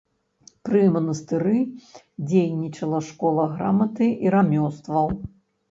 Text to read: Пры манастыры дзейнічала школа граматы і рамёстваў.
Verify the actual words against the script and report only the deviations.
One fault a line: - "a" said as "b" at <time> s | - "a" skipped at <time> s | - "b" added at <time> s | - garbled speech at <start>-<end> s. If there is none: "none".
none